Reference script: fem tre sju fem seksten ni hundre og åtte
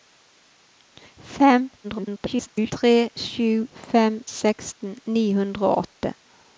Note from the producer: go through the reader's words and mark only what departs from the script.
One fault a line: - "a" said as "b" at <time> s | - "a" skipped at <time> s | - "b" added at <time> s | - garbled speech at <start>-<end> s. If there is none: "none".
- garbled speech at 1.8-2.7 s